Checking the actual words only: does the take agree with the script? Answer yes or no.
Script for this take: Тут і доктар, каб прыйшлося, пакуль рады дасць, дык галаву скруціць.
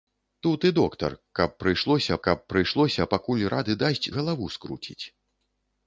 no